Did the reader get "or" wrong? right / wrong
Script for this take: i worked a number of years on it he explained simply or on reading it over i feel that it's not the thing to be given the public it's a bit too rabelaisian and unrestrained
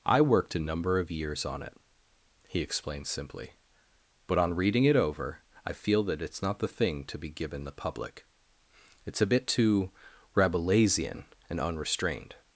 wrong